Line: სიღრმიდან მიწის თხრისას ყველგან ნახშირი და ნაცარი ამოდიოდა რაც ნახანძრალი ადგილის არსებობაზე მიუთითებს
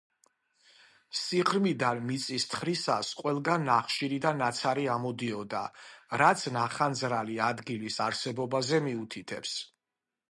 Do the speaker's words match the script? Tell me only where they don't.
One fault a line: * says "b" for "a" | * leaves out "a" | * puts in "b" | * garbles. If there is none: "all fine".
all fine